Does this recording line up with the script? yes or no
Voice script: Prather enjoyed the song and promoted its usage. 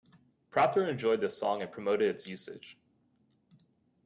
yes